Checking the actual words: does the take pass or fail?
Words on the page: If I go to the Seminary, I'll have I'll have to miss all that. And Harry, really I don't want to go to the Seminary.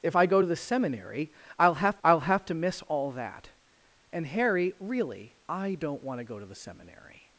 pass